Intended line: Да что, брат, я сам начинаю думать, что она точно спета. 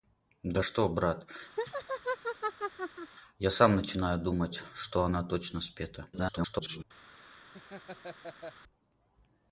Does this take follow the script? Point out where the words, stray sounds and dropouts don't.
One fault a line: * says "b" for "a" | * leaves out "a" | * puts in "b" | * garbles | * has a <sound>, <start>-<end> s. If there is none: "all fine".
* has a laugh, 1.6-3.1 s
* garbles
* has a laugh, 7.5-8.5 s